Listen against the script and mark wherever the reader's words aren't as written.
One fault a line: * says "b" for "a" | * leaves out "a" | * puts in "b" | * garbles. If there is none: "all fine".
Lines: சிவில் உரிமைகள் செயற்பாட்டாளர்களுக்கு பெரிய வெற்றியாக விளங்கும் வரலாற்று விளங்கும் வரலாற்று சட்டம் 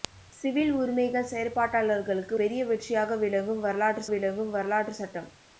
all fine